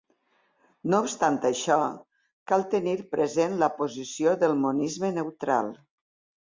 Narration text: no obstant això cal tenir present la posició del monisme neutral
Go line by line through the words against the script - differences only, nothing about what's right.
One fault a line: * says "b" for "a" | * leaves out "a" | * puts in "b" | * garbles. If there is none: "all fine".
all fine